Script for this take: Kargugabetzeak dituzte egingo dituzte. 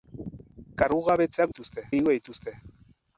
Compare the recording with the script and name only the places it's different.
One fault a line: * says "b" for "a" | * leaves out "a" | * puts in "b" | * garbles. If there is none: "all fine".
all fine